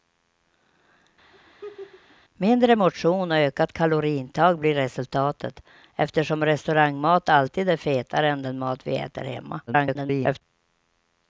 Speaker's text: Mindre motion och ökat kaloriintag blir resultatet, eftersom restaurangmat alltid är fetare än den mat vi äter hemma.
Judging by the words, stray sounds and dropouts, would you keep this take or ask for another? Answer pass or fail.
fail